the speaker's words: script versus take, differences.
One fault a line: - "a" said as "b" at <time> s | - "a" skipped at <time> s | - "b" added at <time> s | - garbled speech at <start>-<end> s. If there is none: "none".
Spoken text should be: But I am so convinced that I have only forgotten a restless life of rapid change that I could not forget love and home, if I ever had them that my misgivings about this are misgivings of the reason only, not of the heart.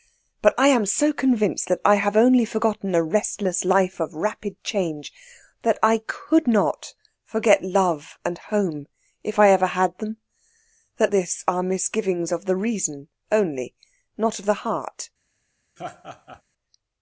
- "my misgivings about" skipped at 11.1 s